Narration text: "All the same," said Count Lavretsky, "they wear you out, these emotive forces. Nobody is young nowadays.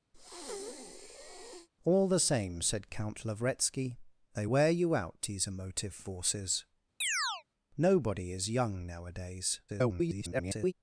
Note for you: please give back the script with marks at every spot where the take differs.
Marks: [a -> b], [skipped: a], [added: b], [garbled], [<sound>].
[breath] "All the same," said Count Lavretsky, "they wear you out, these emotive forces. [chirp] Nobody is young nowadays. [garbled]